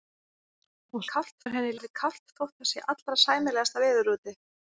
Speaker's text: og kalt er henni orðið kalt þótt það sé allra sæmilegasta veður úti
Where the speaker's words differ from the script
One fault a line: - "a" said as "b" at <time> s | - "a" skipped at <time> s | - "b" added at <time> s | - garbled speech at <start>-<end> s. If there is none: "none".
none